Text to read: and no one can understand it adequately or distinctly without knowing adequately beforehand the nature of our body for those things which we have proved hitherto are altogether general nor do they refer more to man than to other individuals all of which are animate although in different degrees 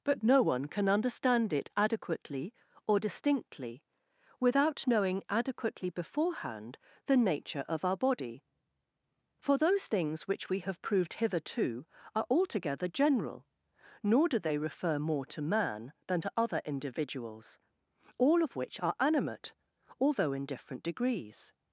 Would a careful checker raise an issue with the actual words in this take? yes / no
yes